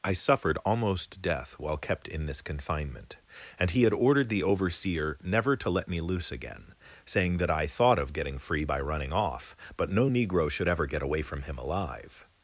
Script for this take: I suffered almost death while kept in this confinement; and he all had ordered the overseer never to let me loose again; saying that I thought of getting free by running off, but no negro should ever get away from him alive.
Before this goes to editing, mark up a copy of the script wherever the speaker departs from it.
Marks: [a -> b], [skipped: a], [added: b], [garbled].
I suffered almost death while kept in this confinement; and he [skipped: all] had ordered the overseer never to let me loose again; saying that I thought of getting free by running off, but no negro should ever get away from him alive.